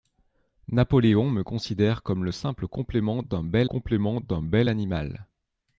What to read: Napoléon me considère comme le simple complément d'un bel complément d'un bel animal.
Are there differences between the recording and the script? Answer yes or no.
no